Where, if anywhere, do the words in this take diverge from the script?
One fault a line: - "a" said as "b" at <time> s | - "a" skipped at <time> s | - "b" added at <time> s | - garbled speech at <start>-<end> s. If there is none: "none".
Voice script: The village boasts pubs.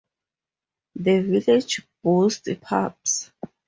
none